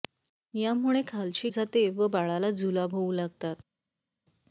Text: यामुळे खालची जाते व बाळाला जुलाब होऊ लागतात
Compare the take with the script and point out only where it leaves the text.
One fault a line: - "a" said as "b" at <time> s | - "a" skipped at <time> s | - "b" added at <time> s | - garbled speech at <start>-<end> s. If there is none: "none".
none